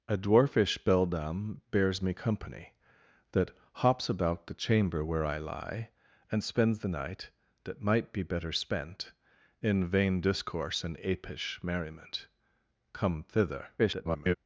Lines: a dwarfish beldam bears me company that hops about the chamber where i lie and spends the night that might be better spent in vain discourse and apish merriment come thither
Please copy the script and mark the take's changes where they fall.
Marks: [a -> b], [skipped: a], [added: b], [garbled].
a dwarfish beldam bears me company that hops about the chamber where i lie and spends the night that might be better spent in vain discourse and apish merriment come thither [garbled]